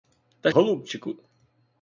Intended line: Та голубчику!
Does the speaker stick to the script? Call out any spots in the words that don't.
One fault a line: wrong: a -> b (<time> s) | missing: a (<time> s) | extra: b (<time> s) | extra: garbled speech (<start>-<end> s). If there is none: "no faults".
no faults